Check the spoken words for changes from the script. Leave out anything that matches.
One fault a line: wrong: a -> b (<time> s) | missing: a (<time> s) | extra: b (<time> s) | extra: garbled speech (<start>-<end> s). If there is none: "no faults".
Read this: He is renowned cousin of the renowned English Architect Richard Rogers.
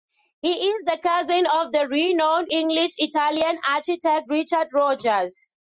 wrong: renowned -> the (0.8 s)
extra: Italian (3.0 s)